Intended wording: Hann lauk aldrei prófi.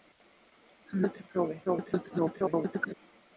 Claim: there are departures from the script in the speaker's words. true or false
true